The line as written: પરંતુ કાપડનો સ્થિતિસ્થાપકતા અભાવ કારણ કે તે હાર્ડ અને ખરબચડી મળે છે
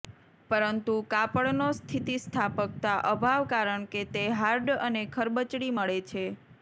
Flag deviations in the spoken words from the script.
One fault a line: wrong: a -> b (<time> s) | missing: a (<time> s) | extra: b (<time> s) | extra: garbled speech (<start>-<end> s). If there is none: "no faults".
no faults